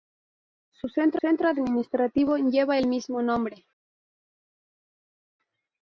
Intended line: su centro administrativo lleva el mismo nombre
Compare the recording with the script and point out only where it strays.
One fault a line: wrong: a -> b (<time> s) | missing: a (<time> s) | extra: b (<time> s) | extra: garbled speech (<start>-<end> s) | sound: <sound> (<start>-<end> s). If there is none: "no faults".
extra: centro (1.2 s)